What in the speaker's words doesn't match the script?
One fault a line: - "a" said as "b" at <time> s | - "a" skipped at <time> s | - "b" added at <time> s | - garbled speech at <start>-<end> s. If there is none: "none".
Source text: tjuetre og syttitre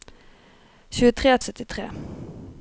none